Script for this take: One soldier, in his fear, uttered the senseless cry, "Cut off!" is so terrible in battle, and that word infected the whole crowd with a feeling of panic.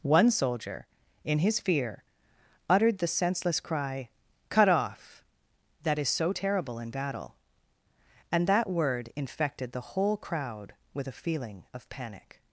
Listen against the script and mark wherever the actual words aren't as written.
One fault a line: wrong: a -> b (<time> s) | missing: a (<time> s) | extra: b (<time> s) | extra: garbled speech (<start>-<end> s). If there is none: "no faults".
extra: that (5.8 s)